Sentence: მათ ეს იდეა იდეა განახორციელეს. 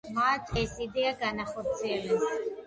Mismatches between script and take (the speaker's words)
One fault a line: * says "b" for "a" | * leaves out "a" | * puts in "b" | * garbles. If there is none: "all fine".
* leaves out "იდეა"